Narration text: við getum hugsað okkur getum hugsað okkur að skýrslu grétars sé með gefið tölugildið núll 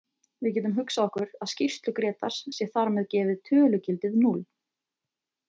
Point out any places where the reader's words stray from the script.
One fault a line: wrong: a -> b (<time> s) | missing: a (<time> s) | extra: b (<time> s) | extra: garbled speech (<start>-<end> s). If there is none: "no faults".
missing: getum hugsað okkur (1.3 s)
extra: þar (2.7 s)